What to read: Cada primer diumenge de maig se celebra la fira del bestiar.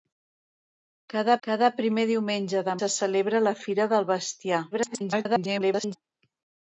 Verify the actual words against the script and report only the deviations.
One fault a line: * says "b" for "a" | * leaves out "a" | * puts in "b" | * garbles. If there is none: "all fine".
* puts in "cada"
* leaves out "maig"
* garbles